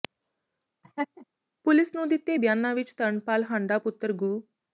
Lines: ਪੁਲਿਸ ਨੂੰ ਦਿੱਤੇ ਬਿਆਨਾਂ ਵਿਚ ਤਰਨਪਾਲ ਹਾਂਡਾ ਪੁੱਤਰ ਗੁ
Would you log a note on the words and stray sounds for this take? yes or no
yes